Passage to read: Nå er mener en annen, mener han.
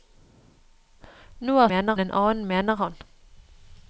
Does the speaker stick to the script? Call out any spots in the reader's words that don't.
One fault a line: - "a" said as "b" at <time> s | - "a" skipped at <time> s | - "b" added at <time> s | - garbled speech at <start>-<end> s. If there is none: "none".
none